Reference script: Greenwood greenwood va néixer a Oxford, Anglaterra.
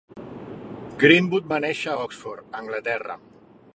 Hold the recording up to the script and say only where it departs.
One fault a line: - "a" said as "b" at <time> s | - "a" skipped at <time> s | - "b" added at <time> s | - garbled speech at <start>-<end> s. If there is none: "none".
- "greenwood" skipped at 1.5 s